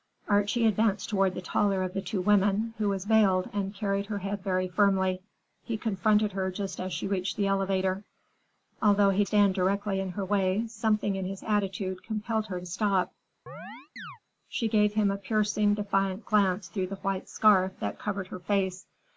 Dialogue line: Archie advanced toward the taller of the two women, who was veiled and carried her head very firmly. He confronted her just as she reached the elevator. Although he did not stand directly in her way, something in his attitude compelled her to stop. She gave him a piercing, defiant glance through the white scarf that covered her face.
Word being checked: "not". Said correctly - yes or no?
no